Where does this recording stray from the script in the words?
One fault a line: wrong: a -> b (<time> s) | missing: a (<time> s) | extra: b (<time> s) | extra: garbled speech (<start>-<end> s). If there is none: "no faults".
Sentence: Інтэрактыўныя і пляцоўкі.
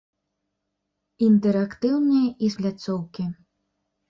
no faults